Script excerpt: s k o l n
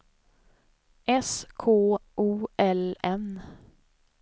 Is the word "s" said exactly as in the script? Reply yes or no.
yes